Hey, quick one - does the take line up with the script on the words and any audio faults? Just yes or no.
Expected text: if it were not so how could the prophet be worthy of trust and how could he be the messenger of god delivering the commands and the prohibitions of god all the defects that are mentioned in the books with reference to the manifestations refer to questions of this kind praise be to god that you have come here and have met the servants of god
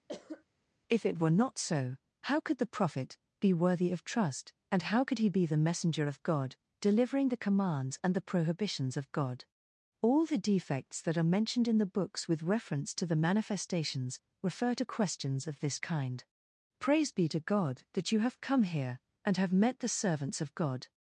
no